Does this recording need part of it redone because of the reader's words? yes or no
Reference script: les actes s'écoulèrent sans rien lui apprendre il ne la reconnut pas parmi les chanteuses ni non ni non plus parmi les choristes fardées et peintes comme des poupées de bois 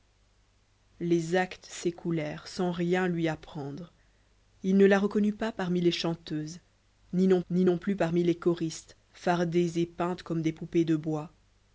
no